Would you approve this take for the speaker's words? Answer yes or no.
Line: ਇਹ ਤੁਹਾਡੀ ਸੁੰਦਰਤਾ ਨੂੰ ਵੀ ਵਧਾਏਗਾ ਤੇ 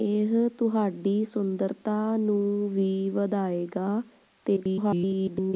no